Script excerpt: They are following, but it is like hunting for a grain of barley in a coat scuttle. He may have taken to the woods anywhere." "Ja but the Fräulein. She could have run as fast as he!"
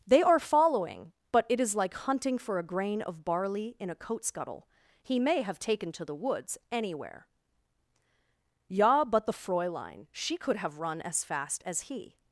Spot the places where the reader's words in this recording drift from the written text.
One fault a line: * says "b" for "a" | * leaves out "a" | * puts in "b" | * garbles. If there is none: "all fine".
all fine